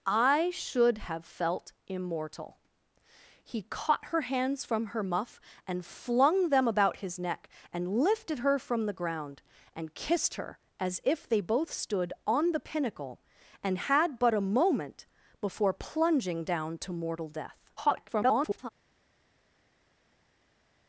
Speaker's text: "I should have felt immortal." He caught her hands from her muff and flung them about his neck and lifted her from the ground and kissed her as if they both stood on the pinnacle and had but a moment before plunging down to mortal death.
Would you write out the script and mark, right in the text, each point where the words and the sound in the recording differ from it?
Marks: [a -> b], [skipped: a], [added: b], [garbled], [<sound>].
"I should have felt immortal." He caught her hands from her muff and flung them about his neck and lifted her from the ground and kissed her as if they both stood on the pinnacle and had but a moment before plunging down to mortal death. [garbled]